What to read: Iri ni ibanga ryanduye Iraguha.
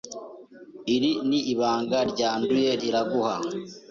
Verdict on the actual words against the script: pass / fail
pass